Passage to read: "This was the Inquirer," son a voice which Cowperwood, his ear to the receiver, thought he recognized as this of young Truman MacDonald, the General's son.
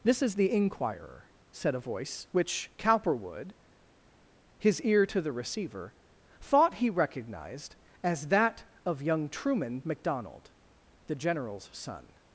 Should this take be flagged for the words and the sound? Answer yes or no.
yes